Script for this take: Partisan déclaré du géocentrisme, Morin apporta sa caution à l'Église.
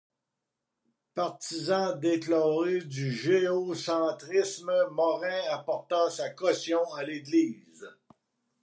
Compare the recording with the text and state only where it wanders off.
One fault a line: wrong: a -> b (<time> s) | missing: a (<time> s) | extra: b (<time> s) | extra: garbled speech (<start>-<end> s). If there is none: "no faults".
no faults